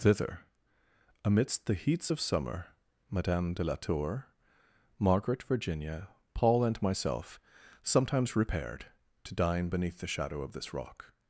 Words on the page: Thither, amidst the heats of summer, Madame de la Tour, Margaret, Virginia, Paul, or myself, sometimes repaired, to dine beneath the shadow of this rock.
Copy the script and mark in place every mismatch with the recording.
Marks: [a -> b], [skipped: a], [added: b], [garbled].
Thither, amidst the heats of summer, Madame de la Tour, Margaret, Virginia, Paul, [or -> and] myself, sometimes repaired, to dine beneath the shadow of this rock.